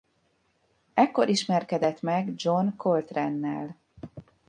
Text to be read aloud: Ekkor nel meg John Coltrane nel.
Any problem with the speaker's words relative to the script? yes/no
yes